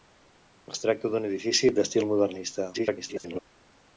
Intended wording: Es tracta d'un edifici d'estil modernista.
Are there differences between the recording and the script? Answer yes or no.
yes